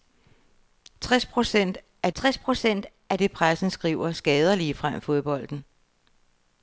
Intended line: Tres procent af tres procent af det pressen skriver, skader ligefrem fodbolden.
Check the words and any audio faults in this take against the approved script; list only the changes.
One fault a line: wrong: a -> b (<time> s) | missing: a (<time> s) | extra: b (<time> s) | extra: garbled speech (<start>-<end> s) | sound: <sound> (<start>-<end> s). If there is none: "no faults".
no faults